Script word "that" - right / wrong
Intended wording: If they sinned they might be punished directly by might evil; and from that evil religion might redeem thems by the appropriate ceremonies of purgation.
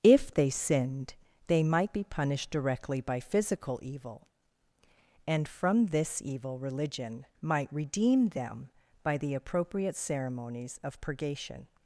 wrong